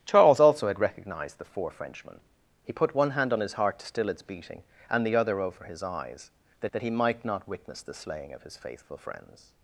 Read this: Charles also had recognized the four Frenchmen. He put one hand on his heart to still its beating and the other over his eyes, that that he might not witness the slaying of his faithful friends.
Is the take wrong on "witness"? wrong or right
right